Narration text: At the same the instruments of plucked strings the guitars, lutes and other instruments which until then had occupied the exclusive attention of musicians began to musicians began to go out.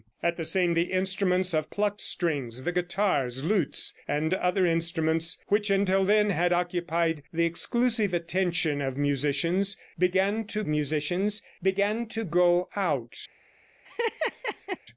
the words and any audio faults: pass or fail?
fail